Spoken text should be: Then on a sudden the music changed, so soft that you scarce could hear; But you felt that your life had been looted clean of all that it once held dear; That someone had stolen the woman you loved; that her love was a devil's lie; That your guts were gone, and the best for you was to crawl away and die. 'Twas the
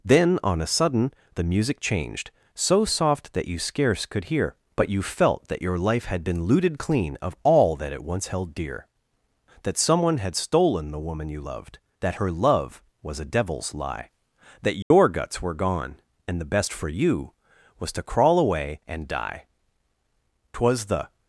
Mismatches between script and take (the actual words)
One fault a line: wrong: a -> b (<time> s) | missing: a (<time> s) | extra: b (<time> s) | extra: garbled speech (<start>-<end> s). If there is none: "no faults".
no faults